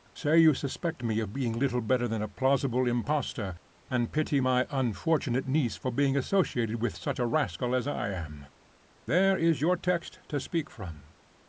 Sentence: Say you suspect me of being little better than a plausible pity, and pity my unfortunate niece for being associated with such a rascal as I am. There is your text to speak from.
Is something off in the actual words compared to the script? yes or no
yes